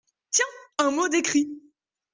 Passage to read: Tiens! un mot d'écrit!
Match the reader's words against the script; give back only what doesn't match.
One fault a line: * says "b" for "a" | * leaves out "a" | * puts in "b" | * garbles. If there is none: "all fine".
all fine